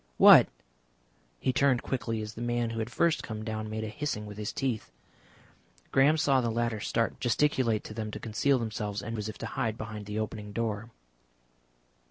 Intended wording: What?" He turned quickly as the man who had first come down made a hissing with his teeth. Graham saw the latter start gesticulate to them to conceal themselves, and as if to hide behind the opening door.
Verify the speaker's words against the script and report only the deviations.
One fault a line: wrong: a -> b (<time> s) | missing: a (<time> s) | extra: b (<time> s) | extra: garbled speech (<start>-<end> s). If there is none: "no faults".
no faults